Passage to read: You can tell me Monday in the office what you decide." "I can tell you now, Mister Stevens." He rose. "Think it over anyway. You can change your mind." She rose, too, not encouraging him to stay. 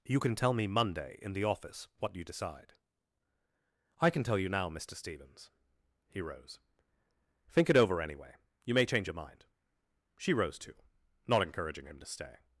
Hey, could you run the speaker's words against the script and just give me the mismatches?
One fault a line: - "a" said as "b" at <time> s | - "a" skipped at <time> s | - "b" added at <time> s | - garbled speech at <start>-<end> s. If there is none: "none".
- "can" said as "may" at 8.7 s